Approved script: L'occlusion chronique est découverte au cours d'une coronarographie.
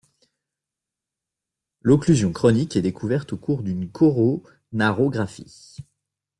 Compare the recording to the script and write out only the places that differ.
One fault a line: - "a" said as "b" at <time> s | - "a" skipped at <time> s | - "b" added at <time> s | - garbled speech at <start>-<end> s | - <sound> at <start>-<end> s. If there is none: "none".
none